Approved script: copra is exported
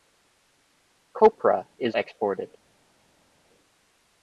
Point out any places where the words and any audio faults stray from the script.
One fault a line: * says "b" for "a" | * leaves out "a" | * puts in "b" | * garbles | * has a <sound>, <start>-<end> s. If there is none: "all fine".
all fine